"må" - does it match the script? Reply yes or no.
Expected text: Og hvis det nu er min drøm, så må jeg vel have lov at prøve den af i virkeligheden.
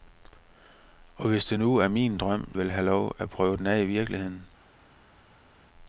no